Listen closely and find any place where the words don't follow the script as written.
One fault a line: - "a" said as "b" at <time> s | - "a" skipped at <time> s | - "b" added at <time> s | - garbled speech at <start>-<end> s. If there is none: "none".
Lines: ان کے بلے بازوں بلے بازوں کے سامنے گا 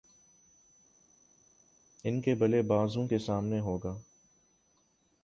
- "بلے بازوں" skipped at 3.1 s
- "ہو" added at 3.6 s